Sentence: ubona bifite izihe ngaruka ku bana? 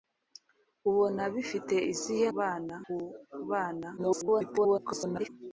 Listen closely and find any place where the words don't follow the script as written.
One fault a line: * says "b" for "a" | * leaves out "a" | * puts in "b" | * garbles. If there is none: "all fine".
* says "bana" for "ngaruka"
* garbles